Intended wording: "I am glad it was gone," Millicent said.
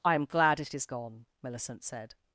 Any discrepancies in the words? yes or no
yes